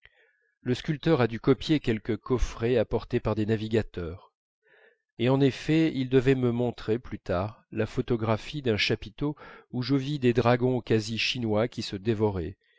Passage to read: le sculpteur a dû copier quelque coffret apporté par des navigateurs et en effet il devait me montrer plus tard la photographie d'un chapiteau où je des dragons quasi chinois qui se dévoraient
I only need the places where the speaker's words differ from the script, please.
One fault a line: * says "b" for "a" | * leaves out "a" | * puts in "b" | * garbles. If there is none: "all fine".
* puts in "vis"